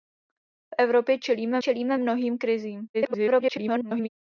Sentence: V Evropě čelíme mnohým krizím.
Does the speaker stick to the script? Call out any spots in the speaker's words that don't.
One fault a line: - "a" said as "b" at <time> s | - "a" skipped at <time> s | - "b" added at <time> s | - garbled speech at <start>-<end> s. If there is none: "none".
- "čelíme" added at 1.6 s
- garbled speech at 2.9-4.1 s